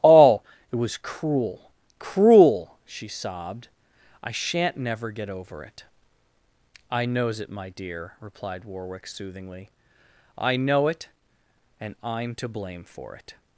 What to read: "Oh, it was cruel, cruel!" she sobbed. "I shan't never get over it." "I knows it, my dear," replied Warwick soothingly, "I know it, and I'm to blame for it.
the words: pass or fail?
pass